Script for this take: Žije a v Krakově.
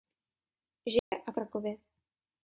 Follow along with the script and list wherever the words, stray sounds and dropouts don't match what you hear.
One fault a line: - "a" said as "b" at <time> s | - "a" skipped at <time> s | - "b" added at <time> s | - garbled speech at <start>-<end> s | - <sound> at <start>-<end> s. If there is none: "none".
- dropout at 1.0-1.1 s